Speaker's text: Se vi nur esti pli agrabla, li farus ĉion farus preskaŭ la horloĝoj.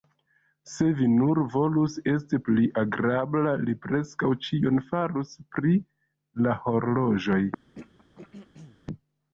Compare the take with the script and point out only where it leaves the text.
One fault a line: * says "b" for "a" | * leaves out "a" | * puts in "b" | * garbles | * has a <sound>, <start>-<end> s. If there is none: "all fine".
* puts in "volus"
* says "preskaŭ" for "farus"
* says "pri" for "preskaŭ"
* has a throat clearing, 7.7-8.8 s